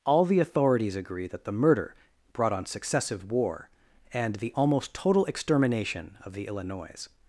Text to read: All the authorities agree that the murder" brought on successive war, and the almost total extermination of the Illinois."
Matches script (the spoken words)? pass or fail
pass